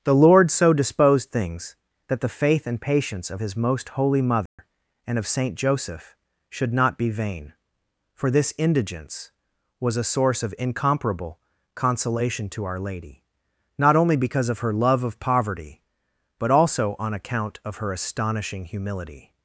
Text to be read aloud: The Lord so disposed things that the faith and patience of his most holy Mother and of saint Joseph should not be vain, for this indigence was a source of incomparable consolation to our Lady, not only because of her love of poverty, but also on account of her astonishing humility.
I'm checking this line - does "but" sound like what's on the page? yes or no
yes